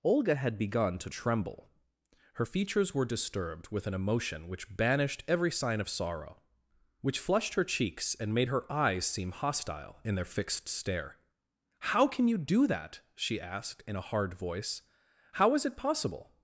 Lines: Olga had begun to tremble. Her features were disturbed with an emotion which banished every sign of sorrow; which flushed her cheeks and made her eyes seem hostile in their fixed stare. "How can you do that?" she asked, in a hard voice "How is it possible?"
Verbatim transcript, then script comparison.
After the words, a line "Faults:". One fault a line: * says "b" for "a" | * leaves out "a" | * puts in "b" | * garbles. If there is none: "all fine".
Olga had begun to tremble. Her features were disturbed with an emotion which banished every sign of sorrow; which flushed her cheeks and made her eyes seem hostile in their fixed stare. "How can you do that?" she asked, in a hard voice "How is it possible?"
Faults:
all fine